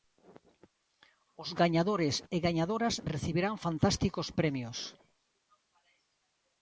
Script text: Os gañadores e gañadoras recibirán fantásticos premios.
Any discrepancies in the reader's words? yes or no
no